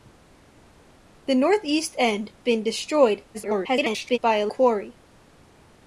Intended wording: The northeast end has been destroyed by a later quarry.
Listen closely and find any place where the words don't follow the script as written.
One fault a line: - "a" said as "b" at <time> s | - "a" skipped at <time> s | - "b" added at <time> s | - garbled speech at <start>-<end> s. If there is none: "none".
- "has" skipped at 2.3 s
- garbled speech at 3.3-4.2 s
- "later" skipped at 4.5 s